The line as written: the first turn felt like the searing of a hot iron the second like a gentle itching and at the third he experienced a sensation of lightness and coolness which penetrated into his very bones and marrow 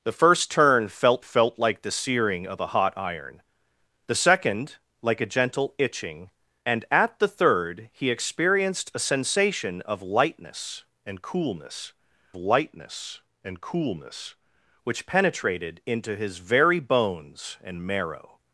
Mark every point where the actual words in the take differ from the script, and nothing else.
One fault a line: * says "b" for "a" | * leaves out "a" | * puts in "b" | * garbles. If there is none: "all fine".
* puts in "felt"
* puts in "lightness and coolness"